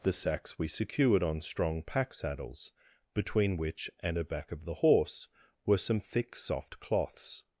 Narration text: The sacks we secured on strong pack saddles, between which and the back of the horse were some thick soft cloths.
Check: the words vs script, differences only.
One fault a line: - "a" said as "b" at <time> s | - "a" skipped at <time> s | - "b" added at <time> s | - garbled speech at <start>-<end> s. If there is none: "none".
- "the" said as "a" at 4.2 s